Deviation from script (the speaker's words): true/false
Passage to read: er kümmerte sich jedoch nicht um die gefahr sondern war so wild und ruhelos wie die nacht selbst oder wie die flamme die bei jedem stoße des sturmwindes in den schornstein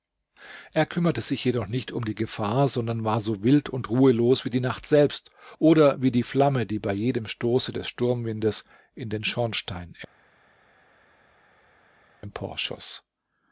false